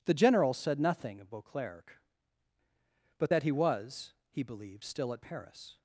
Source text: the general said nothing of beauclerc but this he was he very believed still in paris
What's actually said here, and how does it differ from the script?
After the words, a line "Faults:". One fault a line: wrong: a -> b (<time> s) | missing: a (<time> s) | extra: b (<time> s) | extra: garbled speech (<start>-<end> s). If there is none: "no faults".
the general said nothing of beauclerc but that he was he believed still at paris
Faults:
wrong: this -> that (3.3 s)
missing: very (4.4 s)
wrong: in -> at (5.1 s)